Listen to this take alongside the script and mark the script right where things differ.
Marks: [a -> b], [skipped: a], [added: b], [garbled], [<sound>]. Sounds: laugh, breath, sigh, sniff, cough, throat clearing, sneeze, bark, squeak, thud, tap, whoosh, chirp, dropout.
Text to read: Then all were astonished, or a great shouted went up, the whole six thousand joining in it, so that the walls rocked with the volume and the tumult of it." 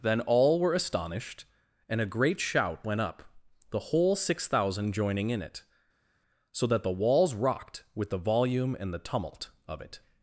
Then all were astonished, [or -> and] a great [shouted -> shout] went up, the whole six thousand joining in it, so that the walls rocked with the volume and the tumult of it."